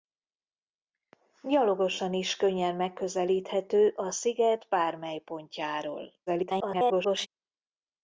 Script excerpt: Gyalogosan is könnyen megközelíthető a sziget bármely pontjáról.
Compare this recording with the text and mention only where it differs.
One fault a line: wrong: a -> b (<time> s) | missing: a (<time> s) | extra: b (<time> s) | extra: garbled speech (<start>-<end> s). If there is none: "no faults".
extra: garbled speech (6.3-7.3 s)